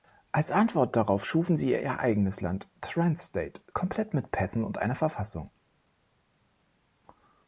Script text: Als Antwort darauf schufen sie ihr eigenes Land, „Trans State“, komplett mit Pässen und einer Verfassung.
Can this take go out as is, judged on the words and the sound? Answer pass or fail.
pass